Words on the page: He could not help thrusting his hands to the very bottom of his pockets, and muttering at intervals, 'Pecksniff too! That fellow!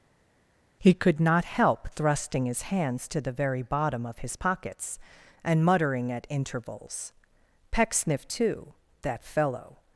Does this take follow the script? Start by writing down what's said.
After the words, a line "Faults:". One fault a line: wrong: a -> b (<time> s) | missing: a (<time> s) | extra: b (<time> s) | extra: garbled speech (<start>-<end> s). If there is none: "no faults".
He could not help thrusting his hands to the very bottom of his pockets, and muttering at intervals, 'Pecksniff too! That fellow!
Faults:
no faults